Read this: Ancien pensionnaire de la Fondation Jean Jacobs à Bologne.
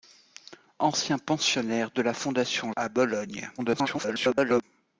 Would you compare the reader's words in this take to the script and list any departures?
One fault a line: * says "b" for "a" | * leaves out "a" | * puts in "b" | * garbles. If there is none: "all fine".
* leaves out "Jean Jacobs"
* garbles